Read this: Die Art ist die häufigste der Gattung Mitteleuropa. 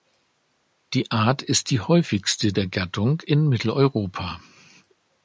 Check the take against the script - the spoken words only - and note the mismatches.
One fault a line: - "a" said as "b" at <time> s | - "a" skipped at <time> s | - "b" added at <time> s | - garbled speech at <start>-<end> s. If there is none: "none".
- "in" added at 3.2 s